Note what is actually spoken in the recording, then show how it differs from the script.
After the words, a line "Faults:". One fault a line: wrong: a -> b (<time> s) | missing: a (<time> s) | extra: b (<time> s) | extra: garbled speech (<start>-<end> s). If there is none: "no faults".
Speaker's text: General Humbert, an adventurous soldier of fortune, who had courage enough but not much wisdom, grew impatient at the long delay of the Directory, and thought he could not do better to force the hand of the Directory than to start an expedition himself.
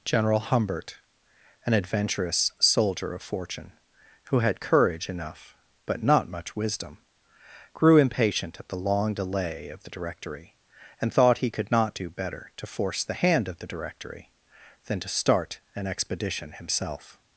General Humbert, an adventurous soldier of fortune, who had courage enough but not much wisdom, grew impatient at the long delay of the Directory, and thought he could not do better to force the hand of the Directory than to start an expedition himself.
Faults:
no faults